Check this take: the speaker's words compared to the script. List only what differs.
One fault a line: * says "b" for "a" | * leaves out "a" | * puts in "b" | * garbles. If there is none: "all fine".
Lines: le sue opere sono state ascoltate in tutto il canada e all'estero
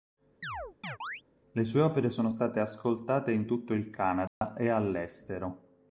all fine